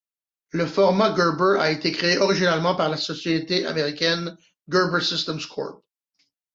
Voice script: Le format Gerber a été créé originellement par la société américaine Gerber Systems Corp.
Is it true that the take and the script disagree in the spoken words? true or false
false